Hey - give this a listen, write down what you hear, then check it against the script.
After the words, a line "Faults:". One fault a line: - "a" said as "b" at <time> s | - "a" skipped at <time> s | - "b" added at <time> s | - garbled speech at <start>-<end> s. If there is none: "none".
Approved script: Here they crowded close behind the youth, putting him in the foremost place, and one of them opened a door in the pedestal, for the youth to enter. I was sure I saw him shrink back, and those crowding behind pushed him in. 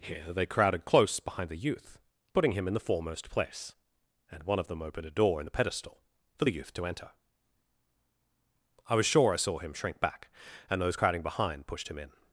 Here they crowded close behind the youth, putting him in the foremost place, and one of them opened a door in the pedestal, for the youth to enter. I was sure I saw him shrink back, and those crowding behind pushed him in.
Faults:
none